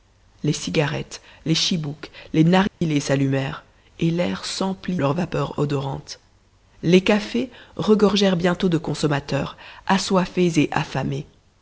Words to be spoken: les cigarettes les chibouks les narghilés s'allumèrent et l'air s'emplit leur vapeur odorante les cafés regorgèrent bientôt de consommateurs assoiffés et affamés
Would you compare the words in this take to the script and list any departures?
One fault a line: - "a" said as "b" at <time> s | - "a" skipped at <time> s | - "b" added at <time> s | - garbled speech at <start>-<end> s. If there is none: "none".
none